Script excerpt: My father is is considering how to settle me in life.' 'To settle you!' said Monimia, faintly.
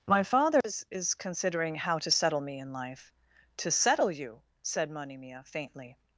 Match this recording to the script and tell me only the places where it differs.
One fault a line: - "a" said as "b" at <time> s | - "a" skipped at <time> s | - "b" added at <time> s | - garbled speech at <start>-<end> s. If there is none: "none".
none